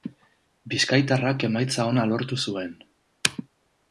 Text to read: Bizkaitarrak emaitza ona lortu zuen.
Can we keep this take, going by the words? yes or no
yes